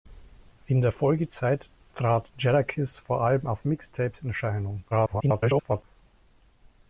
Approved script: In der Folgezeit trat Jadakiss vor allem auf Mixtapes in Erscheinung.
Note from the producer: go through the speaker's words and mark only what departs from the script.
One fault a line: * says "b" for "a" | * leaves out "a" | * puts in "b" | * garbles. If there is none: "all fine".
* garbles